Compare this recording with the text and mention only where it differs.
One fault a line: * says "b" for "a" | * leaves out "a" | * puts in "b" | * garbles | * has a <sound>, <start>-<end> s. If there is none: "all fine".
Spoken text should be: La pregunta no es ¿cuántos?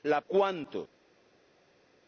* leaves out "pregunta no es"